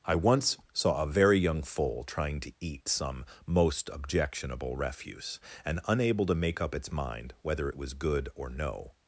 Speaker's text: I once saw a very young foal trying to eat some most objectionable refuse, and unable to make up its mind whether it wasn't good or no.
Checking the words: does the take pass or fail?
fail